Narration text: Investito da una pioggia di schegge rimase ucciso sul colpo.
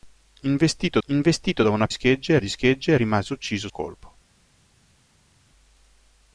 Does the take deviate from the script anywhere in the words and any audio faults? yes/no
yes